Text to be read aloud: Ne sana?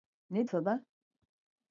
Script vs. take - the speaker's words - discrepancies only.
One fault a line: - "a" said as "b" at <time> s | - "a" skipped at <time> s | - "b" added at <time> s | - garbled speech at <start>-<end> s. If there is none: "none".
none